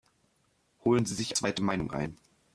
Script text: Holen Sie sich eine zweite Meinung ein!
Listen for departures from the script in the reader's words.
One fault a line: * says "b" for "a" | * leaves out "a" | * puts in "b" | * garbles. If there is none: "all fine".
* leaves out "eine"